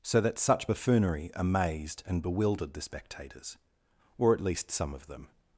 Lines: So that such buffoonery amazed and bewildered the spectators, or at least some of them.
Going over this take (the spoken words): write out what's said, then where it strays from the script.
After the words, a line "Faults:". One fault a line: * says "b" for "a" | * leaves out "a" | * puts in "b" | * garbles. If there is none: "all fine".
So that such buffoonery amazed and bewildered the spectators, or at least some of them.
Faults:
all fine